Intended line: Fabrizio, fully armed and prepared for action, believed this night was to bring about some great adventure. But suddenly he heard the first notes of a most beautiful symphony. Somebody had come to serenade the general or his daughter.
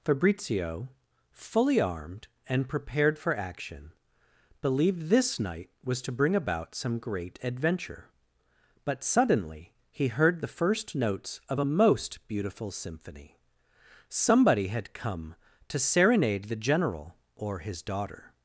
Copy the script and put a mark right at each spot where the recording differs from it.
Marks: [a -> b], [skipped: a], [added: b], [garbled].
Fabrizio, fully armed and prepared for action, believed this night was to bring about some great adventure. But suddenly he heard the first notes of a most beautiful symphony. Somebody had come to serenade the general or his daughter.